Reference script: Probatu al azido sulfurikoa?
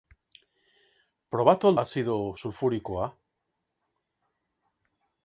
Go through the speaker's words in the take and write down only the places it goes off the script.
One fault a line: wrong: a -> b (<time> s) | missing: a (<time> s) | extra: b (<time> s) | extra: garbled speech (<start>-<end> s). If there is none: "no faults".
no faults